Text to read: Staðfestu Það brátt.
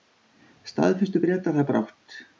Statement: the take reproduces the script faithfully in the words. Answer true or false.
false